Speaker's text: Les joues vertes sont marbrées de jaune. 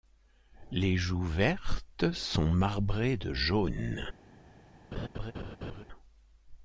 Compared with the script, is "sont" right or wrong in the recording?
right